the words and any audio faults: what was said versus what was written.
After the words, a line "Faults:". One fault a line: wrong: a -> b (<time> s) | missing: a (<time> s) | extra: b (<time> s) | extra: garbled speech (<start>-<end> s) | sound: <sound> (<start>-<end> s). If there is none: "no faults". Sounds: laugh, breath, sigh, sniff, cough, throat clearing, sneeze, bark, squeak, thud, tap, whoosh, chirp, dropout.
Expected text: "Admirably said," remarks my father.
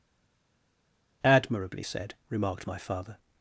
"Admirably said," remarked my father.
Faults:
wrong: remarks -> remarked (2.3 s)